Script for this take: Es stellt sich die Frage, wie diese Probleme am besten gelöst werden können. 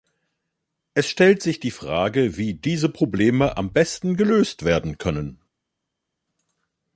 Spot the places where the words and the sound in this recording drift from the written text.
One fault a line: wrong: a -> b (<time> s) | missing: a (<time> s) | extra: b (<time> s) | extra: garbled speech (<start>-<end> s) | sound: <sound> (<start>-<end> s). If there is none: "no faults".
no faults